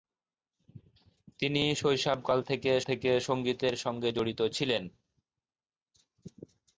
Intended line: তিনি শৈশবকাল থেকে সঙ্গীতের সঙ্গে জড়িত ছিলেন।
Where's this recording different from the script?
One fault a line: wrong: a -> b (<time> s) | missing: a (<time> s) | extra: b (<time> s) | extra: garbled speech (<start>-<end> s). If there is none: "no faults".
extra: থেকে (2.8 s)